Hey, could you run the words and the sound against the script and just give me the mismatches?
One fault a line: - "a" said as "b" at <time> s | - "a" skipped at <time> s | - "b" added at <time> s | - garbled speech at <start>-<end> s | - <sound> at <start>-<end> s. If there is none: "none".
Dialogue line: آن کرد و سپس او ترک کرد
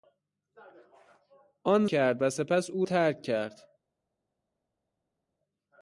none